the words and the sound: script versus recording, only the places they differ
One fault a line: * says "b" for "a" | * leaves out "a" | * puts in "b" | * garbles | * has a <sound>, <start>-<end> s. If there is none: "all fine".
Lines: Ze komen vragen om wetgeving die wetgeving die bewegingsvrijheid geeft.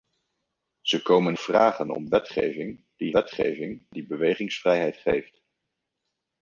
all fine